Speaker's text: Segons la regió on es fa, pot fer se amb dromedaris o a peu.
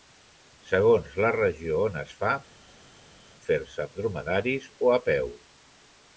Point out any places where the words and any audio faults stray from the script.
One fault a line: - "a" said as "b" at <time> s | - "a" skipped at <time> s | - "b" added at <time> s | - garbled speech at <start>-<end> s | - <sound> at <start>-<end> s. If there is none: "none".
- "pot" skipped at 2.3 s